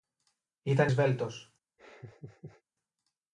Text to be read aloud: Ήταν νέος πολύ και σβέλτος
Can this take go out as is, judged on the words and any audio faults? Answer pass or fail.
fail